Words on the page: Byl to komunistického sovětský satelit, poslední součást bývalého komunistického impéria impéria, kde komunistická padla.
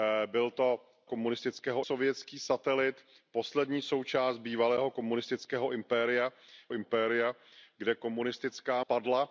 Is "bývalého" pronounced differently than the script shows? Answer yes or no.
no